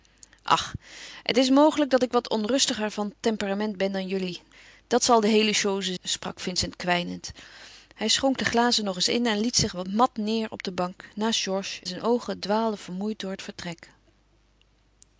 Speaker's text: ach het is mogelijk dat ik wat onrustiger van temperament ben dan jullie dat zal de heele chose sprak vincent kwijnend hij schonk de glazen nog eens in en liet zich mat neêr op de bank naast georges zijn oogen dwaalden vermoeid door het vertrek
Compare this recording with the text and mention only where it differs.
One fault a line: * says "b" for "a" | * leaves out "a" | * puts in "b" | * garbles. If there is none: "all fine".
all fine